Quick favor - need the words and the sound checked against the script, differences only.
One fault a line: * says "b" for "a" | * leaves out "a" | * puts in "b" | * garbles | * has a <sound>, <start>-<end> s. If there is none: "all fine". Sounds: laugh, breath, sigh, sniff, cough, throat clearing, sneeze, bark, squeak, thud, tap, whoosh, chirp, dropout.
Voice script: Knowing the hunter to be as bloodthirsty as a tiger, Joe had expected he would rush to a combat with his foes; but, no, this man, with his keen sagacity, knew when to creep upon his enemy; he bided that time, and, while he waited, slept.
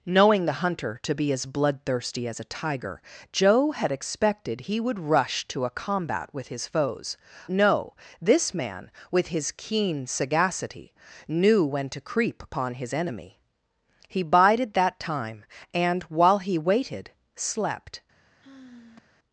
* leaves out "but"
* has a sigh, 18.4-19.2 s